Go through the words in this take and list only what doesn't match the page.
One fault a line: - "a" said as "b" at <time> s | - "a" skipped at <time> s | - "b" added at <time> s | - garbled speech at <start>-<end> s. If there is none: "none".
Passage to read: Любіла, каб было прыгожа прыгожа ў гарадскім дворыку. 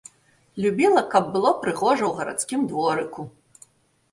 - "прыгожа" skipped at 2.0 s